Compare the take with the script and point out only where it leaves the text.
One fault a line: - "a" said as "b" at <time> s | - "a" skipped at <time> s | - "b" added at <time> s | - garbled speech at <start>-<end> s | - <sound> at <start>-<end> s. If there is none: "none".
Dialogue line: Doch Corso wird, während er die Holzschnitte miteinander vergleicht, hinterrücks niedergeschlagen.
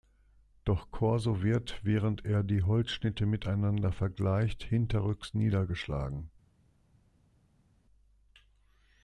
none